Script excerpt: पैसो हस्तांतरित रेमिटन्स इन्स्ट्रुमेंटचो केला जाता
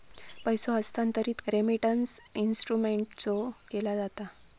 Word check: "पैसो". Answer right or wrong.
right